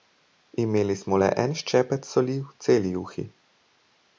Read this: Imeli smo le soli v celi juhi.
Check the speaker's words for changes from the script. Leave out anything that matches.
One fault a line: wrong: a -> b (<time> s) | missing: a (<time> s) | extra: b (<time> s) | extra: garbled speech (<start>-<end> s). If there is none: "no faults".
extra: en ščepec (1.4 s)